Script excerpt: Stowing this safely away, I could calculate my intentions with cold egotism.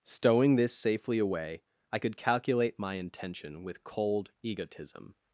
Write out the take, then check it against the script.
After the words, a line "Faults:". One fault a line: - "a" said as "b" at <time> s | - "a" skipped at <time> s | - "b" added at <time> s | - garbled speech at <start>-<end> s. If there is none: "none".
Stowing this safely away, I could calculate my intention with cold egotism.
Faults:
- "intentions" said as "intention" at 2.9 s